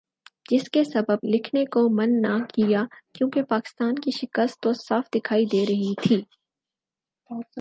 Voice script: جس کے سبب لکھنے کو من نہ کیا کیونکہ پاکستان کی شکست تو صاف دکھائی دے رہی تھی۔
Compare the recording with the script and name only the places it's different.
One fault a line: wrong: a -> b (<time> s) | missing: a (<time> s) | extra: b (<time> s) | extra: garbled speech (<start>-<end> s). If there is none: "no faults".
no faults